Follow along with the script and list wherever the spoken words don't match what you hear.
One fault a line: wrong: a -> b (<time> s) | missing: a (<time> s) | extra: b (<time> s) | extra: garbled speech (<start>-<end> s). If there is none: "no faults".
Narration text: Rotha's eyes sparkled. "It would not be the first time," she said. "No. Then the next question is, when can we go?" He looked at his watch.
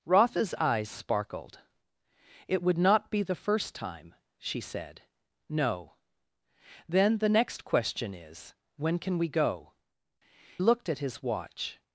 missing: He (9.7 s)